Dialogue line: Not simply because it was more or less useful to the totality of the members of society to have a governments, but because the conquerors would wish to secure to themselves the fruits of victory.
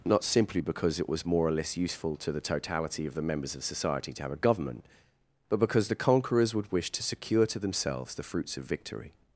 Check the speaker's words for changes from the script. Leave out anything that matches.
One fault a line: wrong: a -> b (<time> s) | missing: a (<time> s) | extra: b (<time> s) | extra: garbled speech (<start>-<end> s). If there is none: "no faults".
wrong: governments -> government (4.4 s)